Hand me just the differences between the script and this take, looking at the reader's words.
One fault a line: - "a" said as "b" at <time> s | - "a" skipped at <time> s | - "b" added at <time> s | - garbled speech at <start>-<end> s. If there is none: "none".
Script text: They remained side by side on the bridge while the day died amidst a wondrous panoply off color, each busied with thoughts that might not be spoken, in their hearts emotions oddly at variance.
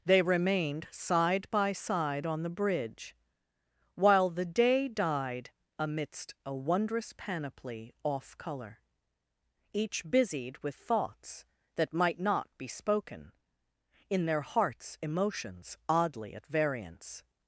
none